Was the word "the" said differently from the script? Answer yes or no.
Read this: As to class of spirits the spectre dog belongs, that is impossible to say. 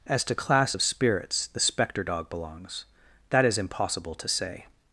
no